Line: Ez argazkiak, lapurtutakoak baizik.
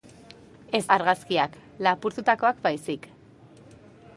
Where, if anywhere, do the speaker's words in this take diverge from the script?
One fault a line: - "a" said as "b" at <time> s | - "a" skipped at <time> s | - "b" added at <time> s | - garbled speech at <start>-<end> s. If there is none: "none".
none